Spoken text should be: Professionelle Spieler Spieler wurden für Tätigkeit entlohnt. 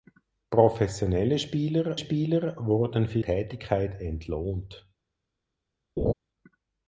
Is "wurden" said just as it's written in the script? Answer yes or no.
yes